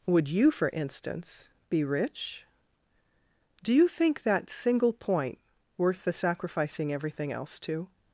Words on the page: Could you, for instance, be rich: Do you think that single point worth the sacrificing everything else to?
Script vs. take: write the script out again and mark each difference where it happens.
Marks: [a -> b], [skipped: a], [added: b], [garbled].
[Could -> Would] you, for instance, be rich: Do you think that single point worth the sacrificing everything else to?